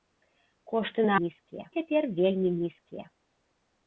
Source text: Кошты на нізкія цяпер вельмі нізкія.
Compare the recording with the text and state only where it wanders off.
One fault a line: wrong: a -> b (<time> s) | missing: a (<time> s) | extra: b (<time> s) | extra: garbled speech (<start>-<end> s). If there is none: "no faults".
no faults